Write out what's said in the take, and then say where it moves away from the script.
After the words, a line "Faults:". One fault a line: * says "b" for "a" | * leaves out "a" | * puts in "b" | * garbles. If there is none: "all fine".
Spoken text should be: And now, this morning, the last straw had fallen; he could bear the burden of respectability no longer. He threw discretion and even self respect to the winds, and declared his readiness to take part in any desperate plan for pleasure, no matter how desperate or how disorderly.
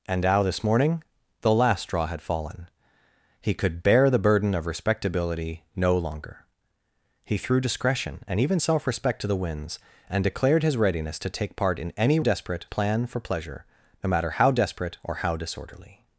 And now, this morning, the last straw had fallen; he could bear the burden of respectability no longer. He threw discretion and even self respect to the winds, and declared his readiness to take part in any desperate plan for pleasure, no matter how desperate or how disorderly.
Faults:
all fine